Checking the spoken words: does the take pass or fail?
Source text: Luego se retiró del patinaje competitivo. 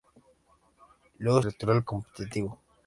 fail